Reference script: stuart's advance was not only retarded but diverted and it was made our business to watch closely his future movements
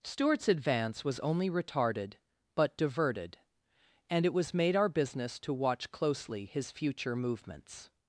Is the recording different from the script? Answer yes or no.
yes